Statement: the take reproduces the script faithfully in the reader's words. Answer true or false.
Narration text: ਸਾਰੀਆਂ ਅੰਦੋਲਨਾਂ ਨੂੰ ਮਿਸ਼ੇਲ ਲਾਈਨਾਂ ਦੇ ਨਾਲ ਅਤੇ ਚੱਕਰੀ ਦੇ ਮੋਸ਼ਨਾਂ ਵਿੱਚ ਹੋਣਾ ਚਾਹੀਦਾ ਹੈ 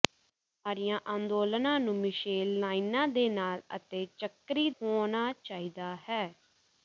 false